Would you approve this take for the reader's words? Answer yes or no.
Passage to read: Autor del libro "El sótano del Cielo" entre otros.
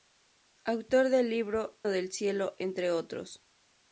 no